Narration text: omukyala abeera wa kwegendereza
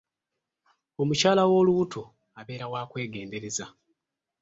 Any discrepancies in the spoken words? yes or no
yes